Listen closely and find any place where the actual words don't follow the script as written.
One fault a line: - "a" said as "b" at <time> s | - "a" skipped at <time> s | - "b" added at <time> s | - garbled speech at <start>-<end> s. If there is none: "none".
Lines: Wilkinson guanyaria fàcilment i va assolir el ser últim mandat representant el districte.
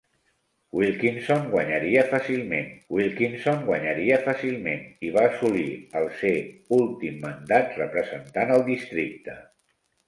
- "wilkinson guanyaria fàcilment" added at 2.9 s